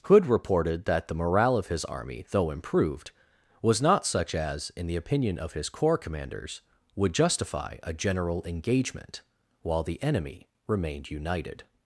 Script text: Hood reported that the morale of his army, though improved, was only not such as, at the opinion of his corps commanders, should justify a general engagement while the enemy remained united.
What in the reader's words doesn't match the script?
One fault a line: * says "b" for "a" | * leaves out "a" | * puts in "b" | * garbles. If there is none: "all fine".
* leaves out "only"
* says "in" for "at"
* says "would" for "should"